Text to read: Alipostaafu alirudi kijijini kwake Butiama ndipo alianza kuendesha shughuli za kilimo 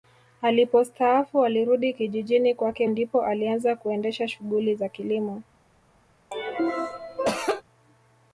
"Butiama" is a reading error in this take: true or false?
true